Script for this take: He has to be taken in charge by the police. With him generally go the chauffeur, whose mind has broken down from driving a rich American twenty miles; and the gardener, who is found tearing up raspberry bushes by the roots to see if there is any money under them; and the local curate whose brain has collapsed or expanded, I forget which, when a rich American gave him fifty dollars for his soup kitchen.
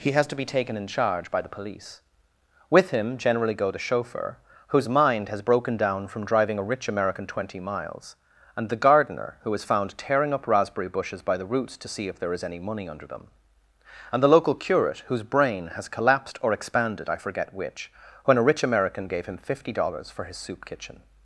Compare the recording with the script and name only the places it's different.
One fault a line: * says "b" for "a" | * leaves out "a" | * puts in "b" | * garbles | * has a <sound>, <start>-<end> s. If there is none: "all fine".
all fine